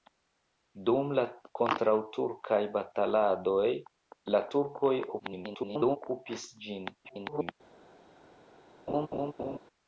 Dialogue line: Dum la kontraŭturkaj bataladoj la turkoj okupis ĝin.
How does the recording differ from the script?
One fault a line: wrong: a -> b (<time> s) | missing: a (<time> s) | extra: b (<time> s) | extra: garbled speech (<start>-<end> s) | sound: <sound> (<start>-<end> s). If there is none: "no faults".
extra: garbled speech (5.2-6.0 s)
extra: garbled speech (7.0-7.5 s)
sound: laugh (8.9-9.6 s)